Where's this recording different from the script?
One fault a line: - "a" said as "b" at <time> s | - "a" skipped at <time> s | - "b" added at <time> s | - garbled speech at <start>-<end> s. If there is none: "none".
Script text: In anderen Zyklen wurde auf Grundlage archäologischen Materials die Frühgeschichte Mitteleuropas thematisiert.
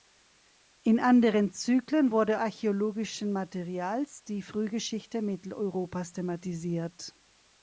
- "auf Grundlage" skipped at 2.4 s